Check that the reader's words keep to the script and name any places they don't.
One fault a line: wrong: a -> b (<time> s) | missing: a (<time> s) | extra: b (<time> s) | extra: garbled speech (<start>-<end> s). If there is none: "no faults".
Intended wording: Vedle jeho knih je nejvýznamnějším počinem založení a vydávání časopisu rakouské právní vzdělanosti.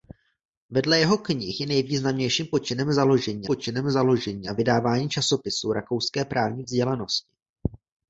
extra: počinem založení (3.5 s)